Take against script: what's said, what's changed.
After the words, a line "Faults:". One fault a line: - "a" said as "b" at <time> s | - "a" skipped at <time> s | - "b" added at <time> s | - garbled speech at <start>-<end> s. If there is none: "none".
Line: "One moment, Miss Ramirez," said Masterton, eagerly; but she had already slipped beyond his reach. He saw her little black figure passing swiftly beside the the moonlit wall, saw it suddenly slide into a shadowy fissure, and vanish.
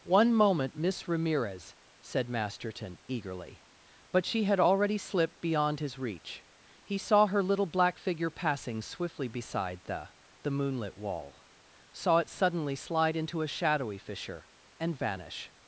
"One moment, Miss Ramirez," said Masterton, eagerly; but she had already slipped beyond his reach. He saw her little black figure passing swiftly beside the the moonlit wall, saw it suddenly slide into a shadowy fissure, and vanish.
Faults:
none